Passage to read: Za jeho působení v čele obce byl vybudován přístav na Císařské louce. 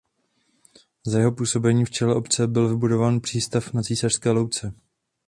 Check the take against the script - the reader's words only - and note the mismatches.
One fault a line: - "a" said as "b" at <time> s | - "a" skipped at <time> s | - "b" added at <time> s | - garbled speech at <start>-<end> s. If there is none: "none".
none